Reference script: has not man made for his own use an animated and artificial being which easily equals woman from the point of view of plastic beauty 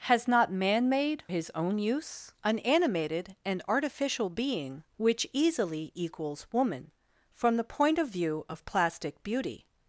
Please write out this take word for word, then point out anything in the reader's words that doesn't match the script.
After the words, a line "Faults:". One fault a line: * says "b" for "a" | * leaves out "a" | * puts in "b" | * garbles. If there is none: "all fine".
has not man made his own use an animated and artificial being which easily equals woman from the point of view of plastic beauty
Faults:
* leaves out "for"